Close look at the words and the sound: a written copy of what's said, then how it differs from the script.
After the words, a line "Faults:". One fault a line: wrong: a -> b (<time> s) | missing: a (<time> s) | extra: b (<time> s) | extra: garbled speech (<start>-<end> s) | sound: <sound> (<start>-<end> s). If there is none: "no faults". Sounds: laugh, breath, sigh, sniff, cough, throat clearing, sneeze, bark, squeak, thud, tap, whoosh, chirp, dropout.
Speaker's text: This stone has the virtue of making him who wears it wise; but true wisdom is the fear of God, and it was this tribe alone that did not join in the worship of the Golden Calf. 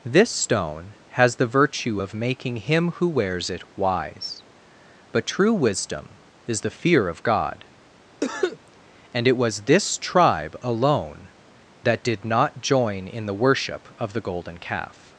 This stone has the virtue of making him who wears it wise; but true wisdom is the fear of God, and it was this tribe alone that did not join in the worship of the Golden Calf.
Faults:
sound: cough (8.2-8.6 s)